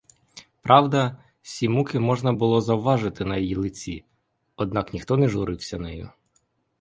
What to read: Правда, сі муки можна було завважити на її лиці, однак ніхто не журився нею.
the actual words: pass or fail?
pass